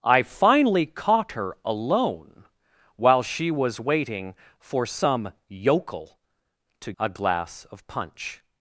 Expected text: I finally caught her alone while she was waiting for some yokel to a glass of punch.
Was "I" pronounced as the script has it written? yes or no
yes